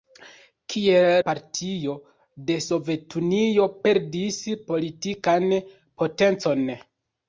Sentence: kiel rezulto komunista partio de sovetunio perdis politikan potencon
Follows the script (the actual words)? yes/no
no